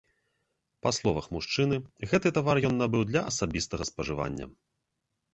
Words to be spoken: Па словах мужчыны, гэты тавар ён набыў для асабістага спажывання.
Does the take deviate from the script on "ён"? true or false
false